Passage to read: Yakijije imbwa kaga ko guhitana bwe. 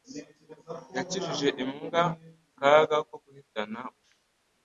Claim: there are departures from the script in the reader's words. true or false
false